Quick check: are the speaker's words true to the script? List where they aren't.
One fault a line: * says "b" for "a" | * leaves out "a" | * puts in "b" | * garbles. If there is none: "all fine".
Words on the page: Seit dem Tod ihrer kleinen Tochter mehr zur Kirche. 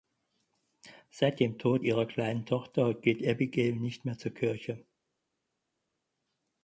* puts in "geht Abigail nicht"